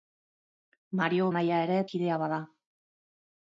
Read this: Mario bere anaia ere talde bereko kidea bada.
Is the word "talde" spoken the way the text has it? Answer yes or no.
no